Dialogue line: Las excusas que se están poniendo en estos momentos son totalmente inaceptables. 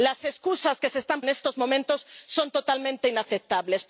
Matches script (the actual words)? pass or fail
fail